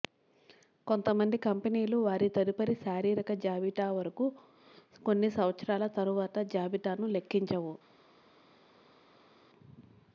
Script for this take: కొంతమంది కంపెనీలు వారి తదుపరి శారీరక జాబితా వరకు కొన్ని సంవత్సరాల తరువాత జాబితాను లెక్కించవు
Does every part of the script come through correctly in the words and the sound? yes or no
yes